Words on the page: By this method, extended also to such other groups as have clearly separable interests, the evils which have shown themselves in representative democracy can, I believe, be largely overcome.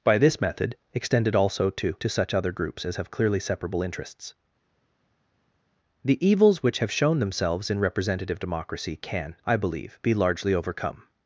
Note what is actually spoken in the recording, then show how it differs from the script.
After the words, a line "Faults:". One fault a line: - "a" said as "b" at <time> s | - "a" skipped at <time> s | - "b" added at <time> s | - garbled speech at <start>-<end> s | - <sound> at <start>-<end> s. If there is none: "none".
By this method, extended also to to such other groups as have clearly separable interests, the evils which have shown themselves in representative democracy can, I believe, be largely overcome.
Faults:
- "to" added at 1.9 s